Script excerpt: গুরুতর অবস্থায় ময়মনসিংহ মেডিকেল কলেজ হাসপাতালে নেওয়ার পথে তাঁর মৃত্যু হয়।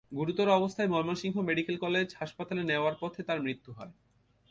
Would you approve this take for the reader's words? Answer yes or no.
yes